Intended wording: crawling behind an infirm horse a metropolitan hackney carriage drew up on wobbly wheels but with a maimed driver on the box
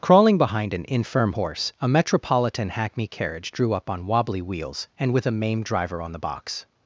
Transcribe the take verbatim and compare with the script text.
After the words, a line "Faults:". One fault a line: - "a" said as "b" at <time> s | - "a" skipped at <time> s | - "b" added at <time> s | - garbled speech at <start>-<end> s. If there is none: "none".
crawling behind an infirm horse a metropolitan hackney carriage drew up on wobbly wheels and with a maimed driver on the box
Faults:
- "but" said as "and" at 5.0 s